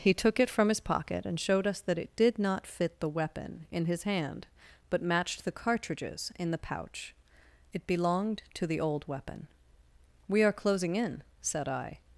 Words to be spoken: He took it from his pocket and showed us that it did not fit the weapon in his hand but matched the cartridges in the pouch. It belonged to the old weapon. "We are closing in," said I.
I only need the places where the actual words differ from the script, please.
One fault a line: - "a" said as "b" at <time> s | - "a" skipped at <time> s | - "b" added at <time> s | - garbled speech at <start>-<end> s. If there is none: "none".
none